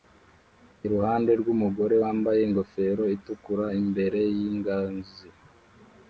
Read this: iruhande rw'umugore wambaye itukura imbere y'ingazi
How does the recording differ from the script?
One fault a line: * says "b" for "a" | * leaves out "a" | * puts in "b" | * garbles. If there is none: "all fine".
* puts in "ingofero"